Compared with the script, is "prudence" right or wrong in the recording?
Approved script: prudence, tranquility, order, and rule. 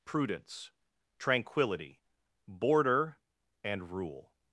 right